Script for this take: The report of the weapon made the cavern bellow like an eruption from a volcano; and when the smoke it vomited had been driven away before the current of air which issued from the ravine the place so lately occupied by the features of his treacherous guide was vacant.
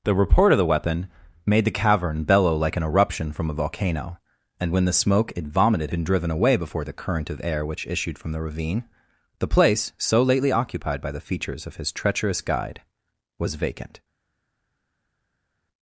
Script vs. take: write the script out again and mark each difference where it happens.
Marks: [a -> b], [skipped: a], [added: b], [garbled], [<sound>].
The report of the weapon made the cavern bellow like an eruption from a volcano; and when the smoke it vomited [skipped: had] been driven away before the current of air which issued from the ravine the place so lately occupied by the features of his treacherous guide was vacant.